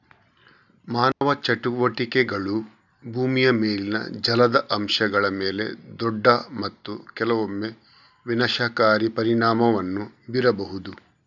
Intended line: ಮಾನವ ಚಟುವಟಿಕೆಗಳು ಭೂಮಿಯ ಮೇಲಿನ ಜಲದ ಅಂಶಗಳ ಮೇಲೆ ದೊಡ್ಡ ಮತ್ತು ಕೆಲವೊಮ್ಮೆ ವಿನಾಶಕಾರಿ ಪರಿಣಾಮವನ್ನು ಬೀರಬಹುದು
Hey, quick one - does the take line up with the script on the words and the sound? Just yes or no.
no